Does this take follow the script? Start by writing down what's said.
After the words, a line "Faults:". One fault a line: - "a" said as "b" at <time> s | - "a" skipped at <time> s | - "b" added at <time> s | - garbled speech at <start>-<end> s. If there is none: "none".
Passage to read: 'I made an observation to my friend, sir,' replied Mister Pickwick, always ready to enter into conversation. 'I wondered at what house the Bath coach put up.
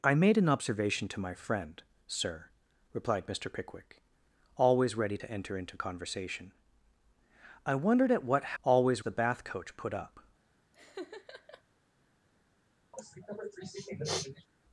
'I made an observation to my friend, sir,' replied Mister Pickwick, always ready to enter into conversation. 'I wondered at what always the Bath coach put up.
Faults:
- "house" said as "always" at 8.6 s